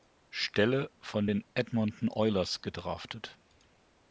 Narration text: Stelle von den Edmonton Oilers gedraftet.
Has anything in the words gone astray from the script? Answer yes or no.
no